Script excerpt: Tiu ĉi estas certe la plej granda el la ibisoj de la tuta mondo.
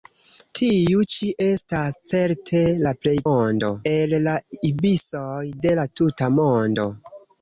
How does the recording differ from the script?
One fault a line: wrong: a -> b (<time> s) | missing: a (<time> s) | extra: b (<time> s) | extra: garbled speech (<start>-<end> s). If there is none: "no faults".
wrong: granda -> mondo (3.3 s)